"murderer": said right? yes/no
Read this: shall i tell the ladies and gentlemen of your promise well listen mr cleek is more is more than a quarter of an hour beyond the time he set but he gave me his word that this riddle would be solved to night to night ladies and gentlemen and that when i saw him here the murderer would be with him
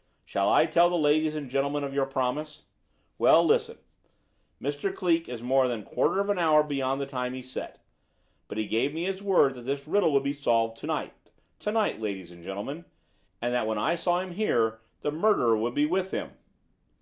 yes